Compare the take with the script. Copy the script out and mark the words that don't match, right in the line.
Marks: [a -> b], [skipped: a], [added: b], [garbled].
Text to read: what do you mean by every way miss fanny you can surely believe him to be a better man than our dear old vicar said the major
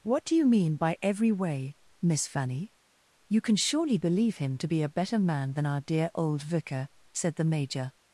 what do you mean by every way miss fanny you can surely believe him to be a better man than our dear old vicar said the major